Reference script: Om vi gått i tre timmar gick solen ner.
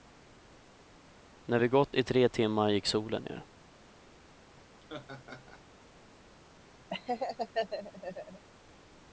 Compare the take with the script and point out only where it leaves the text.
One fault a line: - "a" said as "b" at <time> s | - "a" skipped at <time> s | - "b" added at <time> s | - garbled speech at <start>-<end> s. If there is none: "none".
- "Om" said as "När" at 1.4 s